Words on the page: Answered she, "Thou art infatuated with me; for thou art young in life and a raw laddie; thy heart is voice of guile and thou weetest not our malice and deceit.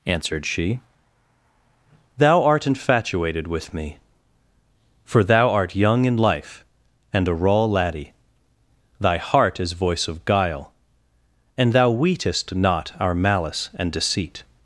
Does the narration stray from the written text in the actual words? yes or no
no